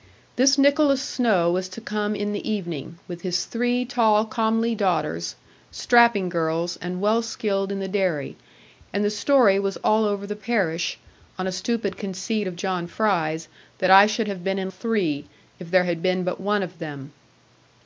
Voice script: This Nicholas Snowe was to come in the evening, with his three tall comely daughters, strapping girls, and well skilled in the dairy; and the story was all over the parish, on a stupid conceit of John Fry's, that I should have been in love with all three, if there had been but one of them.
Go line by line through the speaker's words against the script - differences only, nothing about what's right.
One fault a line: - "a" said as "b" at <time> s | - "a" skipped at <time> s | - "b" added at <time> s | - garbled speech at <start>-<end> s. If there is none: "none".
- "love with all" skipped at 14.7 s